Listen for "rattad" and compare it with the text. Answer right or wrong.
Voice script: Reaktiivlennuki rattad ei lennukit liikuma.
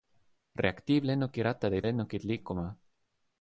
right